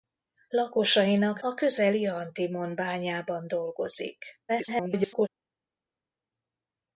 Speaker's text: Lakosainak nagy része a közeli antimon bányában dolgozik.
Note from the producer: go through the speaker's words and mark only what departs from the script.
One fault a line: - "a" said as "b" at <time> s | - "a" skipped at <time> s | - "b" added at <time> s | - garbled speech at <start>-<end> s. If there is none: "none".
- "nagy része" skipped at 1.4 s
- garbled speech at 4.5-5.3 s